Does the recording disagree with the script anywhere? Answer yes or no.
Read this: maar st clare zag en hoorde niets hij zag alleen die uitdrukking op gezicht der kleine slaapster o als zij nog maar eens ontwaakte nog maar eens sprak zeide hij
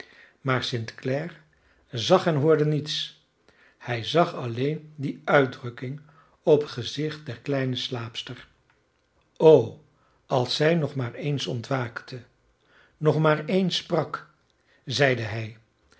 no